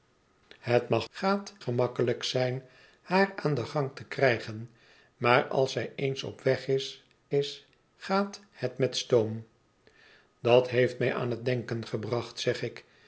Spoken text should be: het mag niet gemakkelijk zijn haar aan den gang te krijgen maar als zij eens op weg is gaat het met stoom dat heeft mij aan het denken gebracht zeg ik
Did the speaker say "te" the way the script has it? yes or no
yes